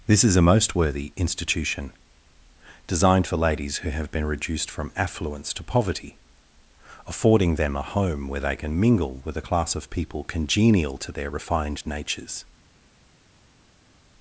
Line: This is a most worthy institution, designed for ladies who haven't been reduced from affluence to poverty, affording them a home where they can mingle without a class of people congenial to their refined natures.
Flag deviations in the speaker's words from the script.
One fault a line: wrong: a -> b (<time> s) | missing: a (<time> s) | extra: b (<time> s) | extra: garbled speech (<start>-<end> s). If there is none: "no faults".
wrong: haven't -> have (3.9 s)
wrong: without -> with (9.2 s)